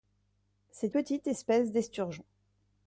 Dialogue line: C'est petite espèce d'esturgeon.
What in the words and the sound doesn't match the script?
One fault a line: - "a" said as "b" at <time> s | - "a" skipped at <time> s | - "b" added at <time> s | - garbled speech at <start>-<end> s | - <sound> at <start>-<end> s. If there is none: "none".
none